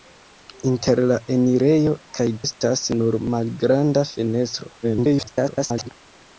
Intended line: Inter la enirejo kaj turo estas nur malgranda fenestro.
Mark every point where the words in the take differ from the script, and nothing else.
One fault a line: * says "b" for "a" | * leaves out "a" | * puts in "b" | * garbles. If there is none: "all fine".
* leaves out "turo"
* garbles